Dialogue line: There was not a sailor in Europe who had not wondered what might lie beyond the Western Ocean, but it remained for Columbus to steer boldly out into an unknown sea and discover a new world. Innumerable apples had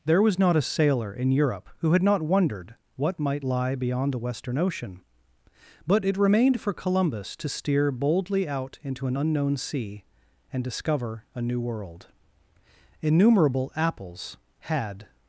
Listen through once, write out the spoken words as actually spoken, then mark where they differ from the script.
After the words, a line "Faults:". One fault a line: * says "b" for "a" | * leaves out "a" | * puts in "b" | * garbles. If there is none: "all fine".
There was not a sailor in Europe who had not wondered what might lie beyond the Western Ocean, but it remained for Columbus to steer boldly out into an unknown sea and discover a new world. Innumerable apples had
Faults:
all fine